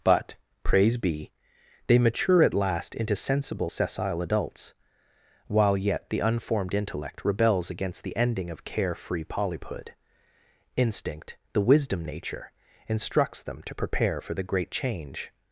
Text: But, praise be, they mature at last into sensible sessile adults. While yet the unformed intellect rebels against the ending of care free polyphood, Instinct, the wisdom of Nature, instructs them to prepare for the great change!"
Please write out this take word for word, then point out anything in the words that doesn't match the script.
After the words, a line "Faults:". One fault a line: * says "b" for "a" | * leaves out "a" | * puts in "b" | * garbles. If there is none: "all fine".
But, praise be, they mature at last into sensible sessile adults. While yet the unformed intellect rebels against the ending of care free polyphood, Instinct, the wisdom Nature, instructs them to prepare for the great change!"
Faults:
* leaves out "of"